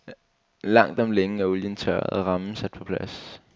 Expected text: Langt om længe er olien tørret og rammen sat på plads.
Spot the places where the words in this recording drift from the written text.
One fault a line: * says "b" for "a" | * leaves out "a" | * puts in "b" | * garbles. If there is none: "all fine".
all fine